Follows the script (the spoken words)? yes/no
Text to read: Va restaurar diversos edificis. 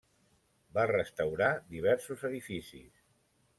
yes